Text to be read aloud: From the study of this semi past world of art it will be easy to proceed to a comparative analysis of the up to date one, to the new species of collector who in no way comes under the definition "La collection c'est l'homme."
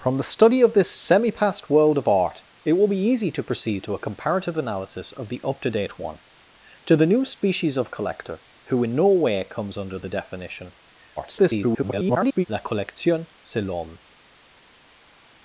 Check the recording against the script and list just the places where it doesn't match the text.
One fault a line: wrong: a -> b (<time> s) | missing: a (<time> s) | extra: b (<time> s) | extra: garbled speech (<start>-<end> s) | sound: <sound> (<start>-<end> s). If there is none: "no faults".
extra: garbled speech (11.2-12.5 s)